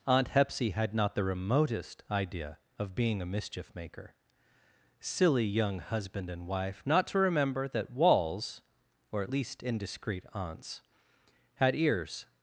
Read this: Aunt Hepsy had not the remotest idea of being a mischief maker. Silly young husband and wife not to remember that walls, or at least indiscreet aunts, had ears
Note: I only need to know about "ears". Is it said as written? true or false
true